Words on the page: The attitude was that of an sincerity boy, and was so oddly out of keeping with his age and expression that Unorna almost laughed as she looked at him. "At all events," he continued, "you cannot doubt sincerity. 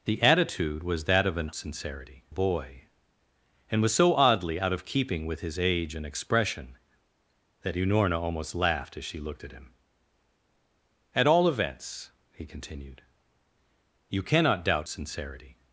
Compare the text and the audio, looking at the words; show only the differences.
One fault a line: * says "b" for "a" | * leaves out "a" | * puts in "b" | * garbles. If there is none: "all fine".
all fine